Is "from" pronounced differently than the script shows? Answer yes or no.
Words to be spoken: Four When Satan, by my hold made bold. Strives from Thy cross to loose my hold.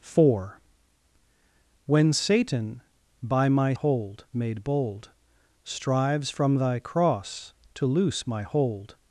no